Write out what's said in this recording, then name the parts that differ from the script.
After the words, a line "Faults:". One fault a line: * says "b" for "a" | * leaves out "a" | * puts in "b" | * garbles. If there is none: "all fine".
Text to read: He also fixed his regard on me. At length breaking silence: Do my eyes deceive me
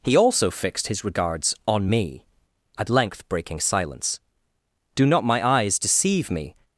He also fixed his regards on me. At length breaking silence: Do not my eyes deceive me
Faults:
* says "regards" for "regard"
* puts in "not"